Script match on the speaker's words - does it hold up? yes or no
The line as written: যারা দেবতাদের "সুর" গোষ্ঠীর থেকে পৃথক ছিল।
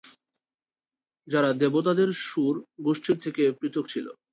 yes